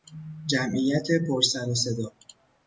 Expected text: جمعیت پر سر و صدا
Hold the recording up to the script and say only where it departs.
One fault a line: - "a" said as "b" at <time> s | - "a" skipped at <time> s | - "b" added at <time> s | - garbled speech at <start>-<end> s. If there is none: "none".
none